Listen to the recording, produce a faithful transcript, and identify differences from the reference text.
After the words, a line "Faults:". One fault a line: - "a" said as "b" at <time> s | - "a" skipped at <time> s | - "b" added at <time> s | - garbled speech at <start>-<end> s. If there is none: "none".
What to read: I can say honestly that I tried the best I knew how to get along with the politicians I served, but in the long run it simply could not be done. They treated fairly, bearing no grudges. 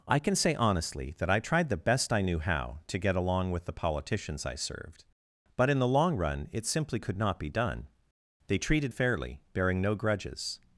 I can say honestly that I tried the best I knew how to get along with the politicians I served, but in the long run it simply could not be done. They treated fairly, bearing no grudges.
Faults:
none